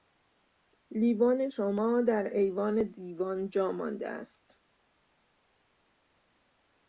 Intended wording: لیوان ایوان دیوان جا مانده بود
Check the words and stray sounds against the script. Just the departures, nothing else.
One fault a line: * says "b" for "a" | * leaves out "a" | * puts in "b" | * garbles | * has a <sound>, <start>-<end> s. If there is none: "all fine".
* puts in "شما در"
* says "است" for "بود"